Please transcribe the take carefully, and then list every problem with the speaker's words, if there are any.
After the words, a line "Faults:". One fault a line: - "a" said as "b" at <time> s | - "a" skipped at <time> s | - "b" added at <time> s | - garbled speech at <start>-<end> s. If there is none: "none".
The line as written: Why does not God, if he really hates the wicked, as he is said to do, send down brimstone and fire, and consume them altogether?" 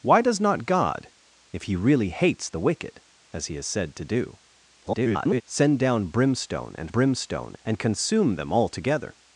Why does not God, if he really hates the wicked, as he is said to do, [garbled] send down brimstone and brimstone, and consume them altogether?"
Faults:
- garbled speech at 4.8-5.4 s
- "fire" said as "brimstone" at 6.9 s